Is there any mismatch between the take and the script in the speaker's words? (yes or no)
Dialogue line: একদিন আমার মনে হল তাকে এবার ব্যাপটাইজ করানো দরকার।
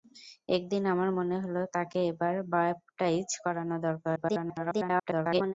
yes